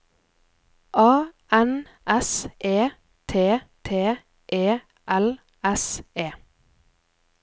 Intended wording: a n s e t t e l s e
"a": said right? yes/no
yes